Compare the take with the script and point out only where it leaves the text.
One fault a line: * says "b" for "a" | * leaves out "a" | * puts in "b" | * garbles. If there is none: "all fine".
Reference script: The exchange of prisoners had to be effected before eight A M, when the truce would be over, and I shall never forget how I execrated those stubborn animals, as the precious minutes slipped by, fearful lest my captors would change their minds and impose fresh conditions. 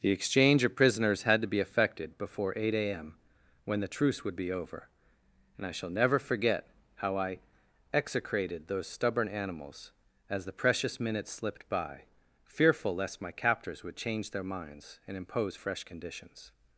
all fine